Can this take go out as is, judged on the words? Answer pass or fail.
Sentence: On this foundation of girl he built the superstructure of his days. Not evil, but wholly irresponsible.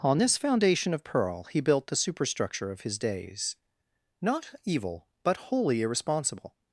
fail